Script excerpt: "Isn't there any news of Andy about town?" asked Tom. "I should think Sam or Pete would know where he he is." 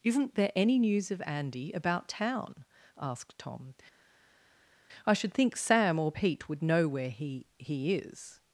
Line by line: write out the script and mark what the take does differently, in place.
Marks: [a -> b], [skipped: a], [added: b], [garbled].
"Isn't there any news of Andy about town?" asked Tom. "I should think Sam or Pete would know where he he is."